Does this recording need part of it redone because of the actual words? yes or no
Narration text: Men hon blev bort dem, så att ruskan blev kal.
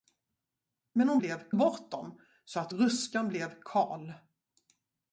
no